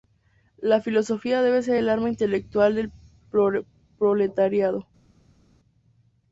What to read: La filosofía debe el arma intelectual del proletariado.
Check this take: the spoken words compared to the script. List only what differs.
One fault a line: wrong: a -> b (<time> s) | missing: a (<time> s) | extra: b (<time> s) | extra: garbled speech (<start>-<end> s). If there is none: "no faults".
extra: ser (1.6 s)